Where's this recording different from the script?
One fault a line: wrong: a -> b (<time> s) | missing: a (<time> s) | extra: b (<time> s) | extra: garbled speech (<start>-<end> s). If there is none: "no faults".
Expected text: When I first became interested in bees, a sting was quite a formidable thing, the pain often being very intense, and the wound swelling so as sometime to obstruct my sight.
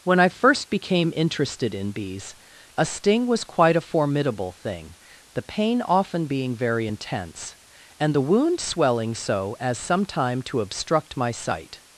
no faults